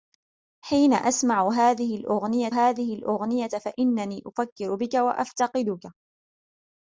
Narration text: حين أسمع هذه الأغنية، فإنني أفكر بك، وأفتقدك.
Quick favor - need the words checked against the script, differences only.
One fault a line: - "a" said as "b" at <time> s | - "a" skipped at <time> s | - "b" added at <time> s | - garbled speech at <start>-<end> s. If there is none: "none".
- "هذه الأغنية" added at 2.5 s